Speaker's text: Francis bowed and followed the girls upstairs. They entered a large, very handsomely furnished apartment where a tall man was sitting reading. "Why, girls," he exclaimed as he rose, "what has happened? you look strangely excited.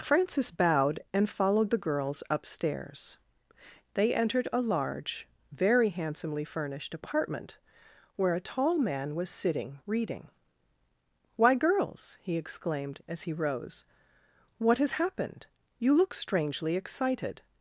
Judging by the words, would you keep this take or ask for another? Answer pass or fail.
pass